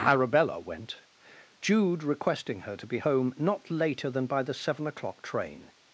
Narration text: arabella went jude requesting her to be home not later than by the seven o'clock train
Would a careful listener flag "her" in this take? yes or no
no